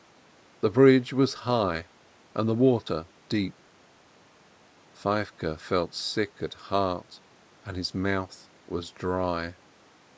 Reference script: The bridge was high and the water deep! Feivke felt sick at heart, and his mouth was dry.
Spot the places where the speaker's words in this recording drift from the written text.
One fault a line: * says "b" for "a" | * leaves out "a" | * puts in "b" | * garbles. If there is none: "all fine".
all fine